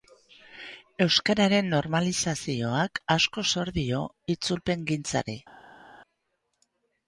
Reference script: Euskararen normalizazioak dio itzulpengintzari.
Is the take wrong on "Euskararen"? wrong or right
right